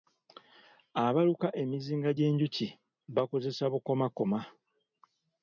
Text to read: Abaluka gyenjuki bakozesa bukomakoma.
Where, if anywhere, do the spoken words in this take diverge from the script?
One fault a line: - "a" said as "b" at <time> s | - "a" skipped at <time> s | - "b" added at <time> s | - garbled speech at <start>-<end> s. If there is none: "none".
- "emizinga" added at 1.6 s